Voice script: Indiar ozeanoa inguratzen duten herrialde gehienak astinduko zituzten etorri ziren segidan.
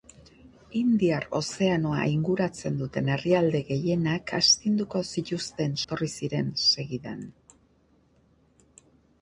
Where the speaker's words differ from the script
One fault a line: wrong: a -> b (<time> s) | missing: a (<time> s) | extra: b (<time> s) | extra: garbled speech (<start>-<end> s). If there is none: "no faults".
no faults